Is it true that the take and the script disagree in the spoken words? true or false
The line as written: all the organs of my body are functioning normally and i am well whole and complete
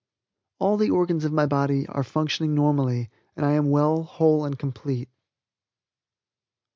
false